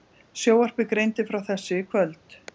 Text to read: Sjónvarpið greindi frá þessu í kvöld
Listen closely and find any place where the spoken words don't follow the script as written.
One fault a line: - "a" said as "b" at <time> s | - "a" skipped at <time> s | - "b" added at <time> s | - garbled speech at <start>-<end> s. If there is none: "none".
none